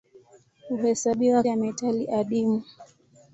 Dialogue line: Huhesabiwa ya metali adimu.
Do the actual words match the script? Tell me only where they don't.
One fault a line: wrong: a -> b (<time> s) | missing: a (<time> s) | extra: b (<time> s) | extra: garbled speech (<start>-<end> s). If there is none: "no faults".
no faults